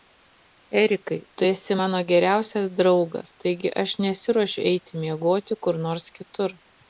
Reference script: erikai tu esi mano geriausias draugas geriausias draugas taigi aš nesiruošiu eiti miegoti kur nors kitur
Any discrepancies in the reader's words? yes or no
yes